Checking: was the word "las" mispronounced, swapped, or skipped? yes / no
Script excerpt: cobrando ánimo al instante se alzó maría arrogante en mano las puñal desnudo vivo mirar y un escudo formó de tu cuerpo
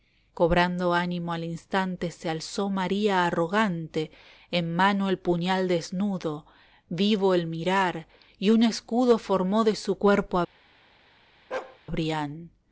yes